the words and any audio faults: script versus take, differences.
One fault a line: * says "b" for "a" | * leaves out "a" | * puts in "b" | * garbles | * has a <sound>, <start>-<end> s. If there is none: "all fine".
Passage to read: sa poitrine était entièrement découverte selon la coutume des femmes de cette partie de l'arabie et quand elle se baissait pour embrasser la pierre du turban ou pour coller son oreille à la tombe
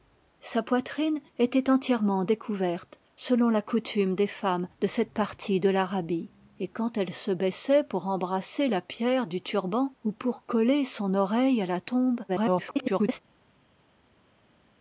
* garbles